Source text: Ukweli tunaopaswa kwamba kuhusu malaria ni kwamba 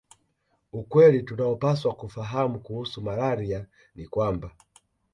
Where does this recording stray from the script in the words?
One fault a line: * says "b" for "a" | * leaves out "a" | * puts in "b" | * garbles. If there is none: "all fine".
* says "kufahamu" for "kwamba"